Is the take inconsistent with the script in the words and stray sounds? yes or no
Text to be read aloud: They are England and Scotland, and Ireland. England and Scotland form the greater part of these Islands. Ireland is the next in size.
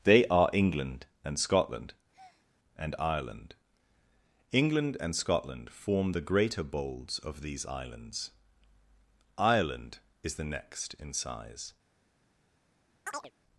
yes